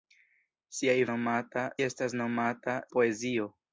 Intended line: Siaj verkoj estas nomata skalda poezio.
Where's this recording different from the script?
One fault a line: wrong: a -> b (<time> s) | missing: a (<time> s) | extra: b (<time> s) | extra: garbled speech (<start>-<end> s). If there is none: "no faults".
wrong: verkoj -> nomata (1.1 s)
missing: skalda (2.8 s)